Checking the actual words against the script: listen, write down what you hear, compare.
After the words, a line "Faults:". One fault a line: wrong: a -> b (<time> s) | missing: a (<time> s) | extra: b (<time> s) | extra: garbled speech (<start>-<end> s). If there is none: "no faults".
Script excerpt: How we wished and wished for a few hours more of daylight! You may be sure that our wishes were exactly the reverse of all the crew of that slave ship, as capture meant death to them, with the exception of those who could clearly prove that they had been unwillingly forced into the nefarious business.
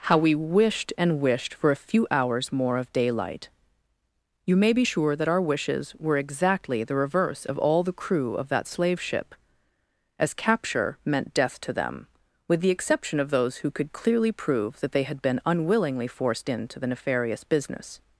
How we wished and wished for a few hours more of daylight! You may be sure that our wishes were exactly the reverse of all the crew of that slave ship, as capture meant death to them, with the exception of those who could clearly prove that they had been unwillingly forced into the nefarious business.
Faults:
no faults